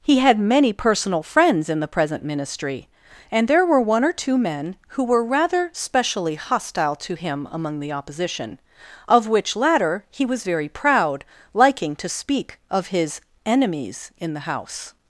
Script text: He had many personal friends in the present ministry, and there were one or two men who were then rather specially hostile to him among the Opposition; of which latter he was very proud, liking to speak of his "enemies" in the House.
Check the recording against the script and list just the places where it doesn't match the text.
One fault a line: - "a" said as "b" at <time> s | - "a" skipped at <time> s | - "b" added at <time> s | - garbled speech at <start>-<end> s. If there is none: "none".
- "then" skipped at 5.2 s